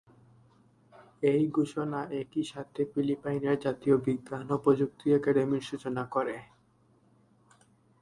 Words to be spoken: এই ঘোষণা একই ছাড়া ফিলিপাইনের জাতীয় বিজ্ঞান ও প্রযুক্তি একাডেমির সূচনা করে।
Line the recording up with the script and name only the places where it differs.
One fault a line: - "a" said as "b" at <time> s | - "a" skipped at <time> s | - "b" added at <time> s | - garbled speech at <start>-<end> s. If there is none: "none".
- "ছাড়া" said as "সাথে" at 2.4 s